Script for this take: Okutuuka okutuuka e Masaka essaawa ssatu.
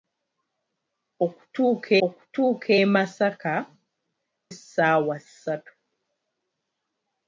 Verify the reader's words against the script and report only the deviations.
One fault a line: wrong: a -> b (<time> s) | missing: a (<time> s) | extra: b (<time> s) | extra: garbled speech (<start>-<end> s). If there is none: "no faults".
no faults